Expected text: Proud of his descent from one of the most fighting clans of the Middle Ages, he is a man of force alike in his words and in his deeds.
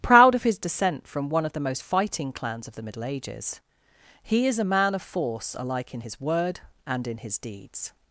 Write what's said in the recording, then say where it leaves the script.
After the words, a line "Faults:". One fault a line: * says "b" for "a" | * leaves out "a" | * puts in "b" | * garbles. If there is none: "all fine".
Proud of his descent from one of the most fighting clans of the Middle Ages, he is a man of force alike in his word and in his deeds.
Faults:
* says "word" for "words"